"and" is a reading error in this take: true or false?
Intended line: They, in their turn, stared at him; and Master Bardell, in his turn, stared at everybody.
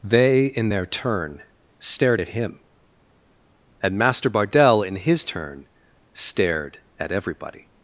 false